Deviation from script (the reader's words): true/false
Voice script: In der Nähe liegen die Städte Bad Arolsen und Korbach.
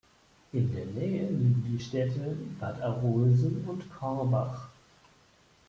false